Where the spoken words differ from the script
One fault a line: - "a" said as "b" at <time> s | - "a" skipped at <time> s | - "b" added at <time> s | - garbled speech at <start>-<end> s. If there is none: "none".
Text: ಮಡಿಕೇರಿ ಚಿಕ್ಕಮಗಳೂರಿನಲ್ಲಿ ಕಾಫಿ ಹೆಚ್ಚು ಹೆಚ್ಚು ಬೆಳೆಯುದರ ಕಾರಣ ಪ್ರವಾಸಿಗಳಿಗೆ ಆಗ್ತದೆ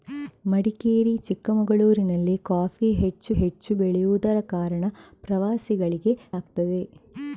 none